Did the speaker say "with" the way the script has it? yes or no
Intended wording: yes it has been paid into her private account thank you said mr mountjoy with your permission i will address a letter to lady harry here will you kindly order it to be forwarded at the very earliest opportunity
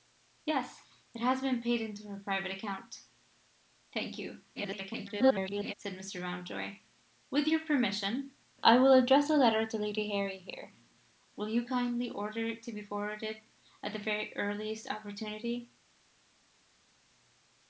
yes